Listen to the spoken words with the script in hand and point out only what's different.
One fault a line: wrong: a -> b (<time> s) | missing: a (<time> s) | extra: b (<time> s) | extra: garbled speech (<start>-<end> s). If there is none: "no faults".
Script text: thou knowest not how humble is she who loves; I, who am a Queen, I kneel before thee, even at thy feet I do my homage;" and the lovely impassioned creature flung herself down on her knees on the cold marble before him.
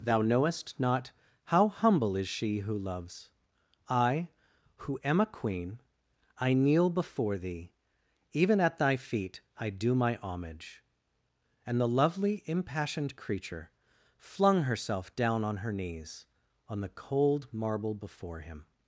no faults